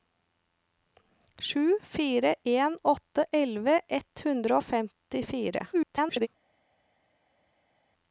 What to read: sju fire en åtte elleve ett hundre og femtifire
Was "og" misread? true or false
false